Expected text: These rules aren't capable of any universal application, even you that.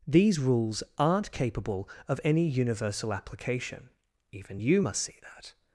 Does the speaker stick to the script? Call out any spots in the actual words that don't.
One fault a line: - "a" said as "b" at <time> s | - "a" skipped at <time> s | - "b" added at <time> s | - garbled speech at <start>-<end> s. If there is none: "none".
- "must see" added at 4.8 s